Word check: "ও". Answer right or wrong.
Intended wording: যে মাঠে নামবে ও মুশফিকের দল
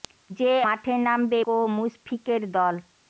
right